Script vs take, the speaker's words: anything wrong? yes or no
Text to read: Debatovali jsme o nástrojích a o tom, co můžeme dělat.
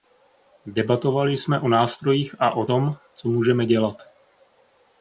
no